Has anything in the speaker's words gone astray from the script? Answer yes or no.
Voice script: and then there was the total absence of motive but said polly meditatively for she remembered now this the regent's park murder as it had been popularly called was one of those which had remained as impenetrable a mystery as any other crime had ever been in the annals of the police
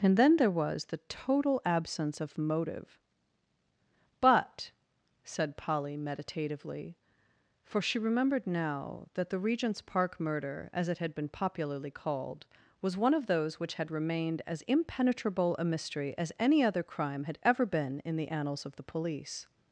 yes